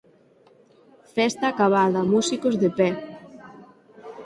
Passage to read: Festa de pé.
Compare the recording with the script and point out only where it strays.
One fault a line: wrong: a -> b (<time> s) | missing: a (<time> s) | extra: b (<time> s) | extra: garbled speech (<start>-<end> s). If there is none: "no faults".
extra: acabada músicos (1.5 s)